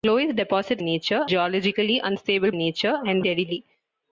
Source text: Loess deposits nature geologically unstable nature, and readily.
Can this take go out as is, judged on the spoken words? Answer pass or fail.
pass